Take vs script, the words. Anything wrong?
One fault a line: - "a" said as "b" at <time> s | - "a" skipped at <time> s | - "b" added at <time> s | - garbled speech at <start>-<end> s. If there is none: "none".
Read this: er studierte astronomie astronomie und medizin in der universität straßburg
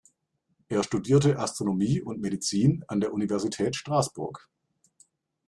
- "astronomie" skipped at 2.0 s
- "in" said as "an" at 2.9 s